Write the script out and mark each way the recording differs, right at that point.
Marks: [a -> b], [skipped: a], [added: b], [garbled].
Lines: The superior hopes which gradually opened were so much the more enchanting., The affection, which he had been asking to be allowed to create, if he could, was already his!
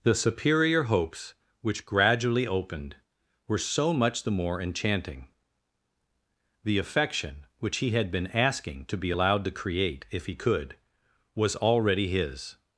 The superior hopes which gradually opened were so much the more enchanting., The affection, which he had been asking to be allowed to create, if he could, was already his!